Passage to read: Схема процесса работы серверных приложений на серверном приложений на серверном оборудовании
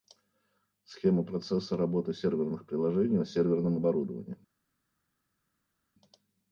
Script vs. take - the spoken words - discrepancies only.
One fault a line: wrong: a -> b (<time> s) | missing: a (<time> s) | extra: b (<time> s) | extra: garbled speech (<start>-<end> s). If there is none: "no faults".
missing: приложений на серверном (3.8 s)